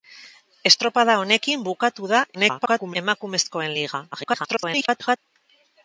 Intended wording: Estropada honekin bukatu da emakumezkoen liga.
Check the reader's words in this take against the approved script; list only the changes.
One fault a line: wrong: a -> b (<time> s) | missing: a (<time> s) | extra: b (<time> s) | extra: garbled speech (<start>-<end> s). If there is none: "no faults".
extra: garbled speech (2.3-3.0 s)
extra: garbled speech (4.1-5.2 s)